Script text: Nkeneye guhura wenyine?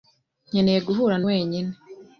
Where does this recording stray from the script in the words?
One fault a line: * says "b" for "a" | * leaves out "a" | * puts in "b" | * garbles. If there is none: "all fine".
all fine